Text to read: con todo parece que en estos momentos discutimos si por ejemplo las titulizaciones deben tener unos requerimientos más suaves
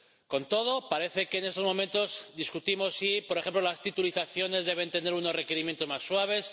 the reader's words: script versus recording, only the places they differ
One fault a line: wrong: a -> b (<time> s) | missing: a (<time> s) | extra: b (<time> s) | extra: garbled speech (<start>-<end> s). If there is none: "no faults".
no faults